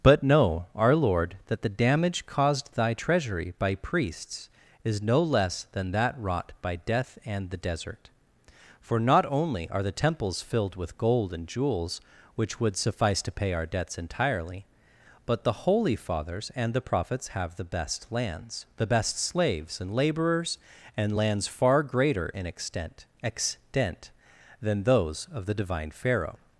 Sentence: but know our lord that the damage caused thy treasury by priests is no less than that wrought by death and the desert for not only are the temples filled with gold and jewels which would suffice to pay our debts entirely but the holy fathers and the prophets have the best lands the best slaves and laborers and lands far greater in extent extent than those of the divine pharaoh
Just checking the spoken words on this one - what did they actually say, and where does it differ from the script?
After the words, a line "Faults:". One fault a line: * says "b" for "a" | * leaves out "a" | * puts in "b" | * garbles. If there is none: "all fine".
but know our lord that the damage caused thy treasury by priests is no less than that wrought by death and the desert for not only are the temples filled with gold and jewels which would suffice to pay our debts entirely but the holy fathers and the prophets have the best lands the best slaves and laborers and lands far greater in extent extent than those of the divine pharaoh
Faults:
all fine